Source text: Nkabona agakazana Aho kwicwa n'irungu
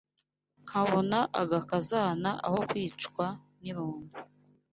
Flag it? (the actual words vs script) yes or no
no